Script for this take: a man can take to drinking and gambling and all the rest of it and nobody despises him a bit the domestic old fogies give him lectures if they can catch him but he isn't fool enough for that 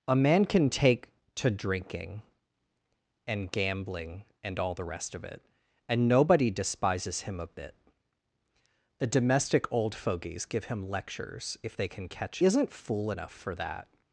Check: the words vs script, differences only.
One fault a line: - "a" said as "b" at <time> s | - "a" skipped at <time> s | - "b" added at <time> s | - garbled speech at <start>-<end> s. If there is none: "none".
- "him but he" skipped at 12.4 s